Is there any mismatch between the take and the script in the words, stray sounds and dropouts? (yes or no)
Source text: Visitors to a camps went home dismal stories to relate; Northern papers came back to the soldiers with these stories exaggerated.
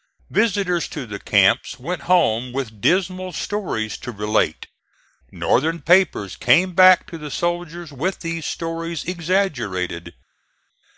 yes